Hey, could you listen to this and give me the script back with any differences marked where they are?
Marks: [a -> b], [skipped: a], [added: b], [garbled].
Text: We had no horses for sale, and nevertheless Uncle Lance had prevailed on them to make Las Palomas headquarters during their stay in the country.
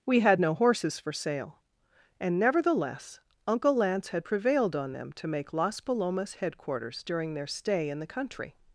We had no horses for sale, and nevertheless Uncle Lance had prevailed on them to make Las Palomas headquarters during their stay in the country.